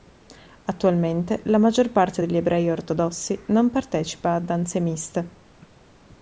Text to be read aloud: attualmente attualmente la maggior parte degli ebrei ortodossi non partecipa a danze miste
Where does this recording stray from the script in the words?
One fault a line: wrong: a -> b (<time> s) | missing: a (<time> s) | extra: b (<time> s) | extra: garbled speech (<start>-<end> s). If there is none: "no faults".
missing: attualmente (1.4 s)